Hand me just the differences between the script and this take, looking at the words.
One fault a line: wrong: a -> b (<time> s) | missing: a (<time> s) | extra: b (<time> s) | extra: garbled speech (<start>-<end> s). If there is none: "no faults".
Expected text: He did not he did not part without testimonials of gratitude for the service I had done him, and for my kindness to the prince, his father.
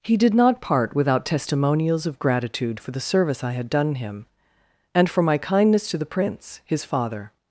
missing: he did not (0.6 s)